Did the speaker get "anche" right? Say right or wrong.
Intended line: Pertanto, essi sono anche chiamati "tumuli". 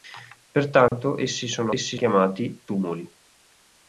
wrong